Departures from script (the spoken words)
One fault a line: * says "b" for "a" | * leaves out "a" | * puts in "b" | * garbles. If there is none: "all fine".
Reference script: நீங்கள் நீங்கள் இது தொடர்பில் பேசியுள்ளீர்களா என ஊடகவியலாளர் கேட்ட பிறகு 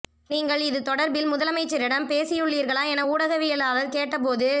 * leaves out "நீங்கள்"
* puts in "முதலமைச்சரிடம்"
* says "போது" for "பிறகு"